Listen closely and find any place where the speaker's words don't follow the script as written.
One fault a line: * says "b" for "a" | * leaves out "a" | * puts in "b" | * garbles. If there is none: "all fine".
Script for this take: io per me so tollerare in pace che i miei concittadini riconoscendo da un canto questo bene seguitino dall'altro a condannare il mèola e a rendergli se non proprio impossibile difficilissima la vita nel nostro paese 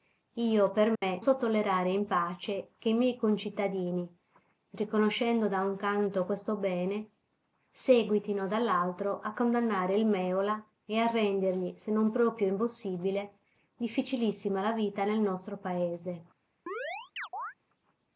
all fine